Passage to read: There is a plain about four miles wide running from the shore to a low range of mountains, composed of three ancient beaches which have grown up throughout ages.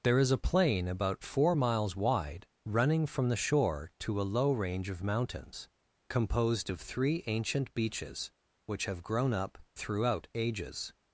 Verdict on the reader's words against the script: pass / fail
pass